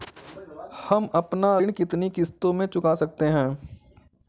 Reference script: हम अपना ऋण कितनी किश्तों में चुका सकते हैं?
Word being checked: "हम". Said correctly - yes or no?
yes